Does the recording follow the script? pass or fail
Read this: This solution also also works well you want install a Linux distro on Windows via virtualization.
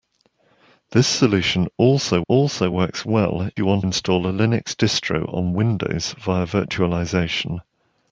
pass